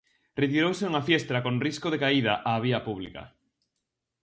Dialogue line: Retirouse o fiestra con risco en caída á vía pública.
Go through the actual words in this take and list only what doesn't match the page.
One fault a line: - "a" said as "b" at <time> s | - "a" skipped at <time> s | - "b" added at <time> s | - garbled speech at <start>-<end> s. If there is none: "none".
- "o" said as "unha" at 0.9 s
- "en" said as "de" at 1.9 s